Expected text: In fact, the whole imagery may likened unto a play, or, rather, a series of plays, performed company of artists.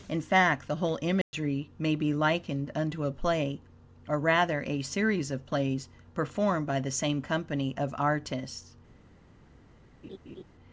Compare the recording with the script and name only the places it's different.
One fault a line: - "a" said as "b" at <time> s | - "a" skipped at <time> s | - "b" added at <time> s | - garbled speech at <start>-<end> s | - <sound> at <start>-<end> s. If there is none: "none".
- dropout at 1.2-1.3 s
- "be" added at 1.9 s
- "by the same" added at 6.7 s
- laugh at 10.0-10.4 s